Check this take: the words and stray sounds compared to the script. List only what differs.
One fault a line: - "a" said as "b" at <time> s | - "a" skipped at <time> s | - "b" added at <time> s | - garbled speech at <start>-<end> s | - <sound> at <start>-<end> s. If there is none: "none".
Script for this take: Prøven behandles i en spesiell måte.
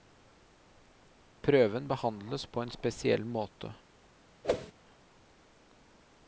- "i" said as "på" at 2.5 s
- whoosh at 4.4-4.7 s